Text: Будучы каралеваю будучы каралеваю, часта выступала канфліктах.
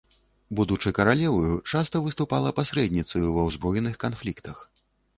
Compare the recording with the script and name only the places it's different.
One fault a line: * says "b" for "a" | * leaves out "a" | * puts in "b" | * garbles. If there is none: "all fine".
* says "часта выступала пасрэдніцаю ва ўзброеных" for "будучы каралеваю часта выступала"